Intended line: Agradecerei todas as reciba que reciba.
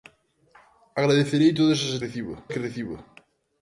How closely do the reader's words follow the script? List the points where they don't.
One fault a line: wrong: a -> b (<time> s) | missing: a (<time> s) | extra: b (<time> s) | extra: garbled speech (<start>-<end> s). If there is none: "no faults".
no faults